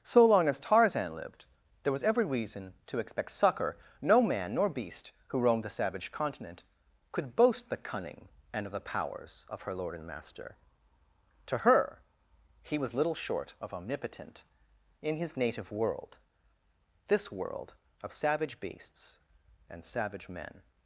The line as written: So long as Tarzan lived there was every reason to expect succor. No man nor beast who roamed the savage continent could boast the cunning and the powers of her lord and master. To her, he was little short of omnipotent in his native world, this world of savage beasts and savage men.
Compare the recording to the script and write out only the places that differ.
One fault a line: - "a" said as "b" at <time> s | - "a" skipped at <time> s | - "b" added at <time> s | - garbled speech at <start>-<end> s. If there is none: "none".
- "of" added at 8.7 s